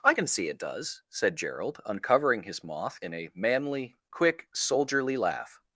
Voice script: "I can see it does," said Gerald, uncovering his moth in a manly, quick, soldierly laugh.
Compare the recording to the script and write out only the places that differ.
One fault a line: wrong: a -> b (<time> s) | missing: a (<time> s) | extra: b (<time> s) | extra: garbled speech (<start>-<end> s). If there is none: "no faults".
no faults